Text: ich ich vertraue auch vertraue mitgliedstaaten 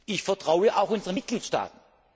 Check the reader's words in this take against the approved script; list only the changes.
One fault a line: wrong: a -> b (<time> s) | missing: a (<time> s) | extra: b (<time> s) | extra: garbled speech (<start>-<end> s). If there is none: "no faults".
missing: ich (0.2 s)
wrong: vertraue -> unseren (0.9 s)